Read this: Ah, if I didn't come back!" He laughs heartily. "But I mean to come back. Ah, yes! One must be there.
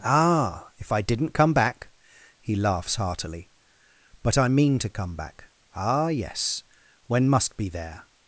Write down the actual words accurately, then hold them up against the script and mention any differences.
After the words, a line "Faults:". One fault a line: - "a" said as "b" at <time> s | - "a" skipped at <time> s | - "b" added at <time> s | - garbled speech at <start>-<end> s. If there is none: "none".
Ah, if I didn't come back!" He laughs heartily. "But I mean to come back. Ah, yes! When must be there.
Faults:
- "One" said as "When" at 7.1 s